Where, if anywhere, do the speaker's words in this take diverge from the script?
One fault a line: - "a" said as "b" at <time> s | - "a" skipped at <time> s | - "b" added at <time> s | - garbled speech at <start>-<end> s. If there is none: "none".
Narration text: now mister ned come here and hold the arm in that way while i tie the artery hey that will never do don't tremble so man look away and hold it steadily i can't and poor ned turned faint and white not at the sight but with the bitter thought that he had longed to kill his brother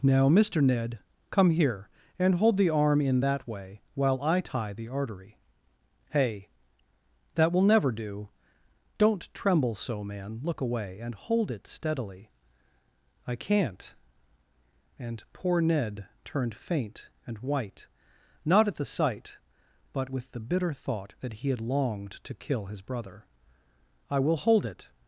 - "i will hold it" added at 24.1 s